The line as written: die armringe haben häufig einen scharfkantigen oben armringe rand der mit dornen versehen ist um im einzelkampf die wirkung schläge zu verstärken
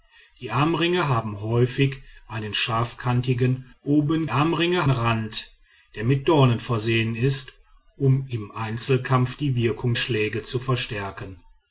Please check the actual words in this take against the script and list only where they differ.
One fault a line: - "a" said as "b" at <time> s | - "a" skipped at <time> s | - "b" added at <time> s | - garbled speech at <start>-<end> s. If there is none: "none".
none